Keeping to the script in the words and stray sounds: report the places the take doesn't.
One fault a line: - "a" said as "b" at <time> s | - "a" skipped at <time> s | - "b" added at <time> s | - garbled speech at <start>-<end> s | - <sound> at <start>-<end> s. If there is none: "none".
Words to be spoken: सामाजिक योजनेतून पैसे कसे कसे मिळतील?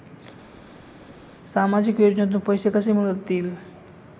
- "कसे" skipped at 2.9 s